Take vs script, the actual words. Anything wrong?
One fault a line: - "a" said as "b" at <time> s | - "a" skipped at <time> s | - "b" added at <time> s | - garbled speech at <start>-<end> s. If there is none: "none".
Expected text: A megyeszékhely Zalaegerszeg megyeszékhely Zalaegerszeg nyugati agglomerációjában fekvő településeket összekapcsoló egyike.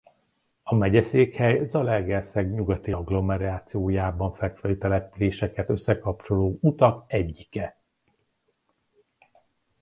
- "megyeszékhely Zalaegerszeg" skipped at 2.5 s
- "utak" added at 6.6 s